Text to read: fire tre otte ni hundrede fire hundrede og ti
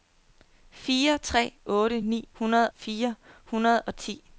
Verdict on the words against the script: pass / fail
pass